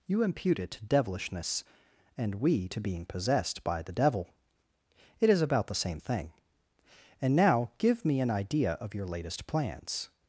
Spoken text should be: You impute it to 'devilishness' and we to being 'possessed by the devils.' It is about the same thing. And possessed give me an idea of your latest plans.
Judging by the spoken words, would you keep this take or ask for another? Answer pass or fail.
fail